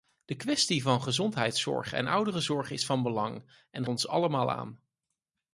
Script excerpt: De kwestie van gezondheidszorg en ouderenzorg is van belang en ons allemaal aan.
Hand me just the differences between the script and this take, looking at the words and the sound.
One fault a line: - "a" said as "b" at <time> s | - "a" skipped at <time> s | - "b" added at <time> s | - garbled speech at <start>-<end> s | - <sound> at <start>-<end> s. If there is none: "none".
none